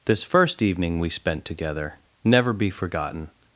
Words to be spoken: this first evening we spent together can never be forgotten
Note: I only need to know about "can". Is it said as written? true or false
false